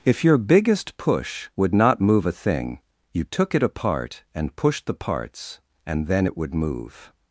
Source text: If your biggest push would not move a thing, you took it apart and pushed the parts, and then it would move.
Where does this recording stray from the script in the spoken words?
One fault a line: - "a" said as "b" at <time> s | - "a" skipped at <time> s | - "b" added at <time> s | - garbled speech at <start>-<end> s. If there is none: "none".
none